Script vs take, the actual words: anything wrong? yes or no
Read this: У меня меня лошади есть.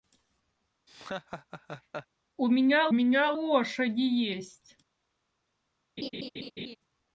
no